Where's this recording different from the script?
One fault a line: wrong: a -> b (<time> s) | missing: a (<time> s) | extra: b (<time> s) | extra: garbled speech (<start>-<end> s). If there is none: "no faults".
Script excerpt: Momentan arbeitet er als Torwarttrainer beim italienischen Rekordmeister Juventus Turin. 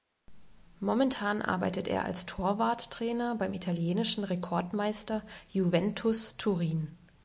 no faults